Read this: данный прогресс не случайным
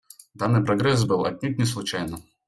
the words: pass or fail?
fail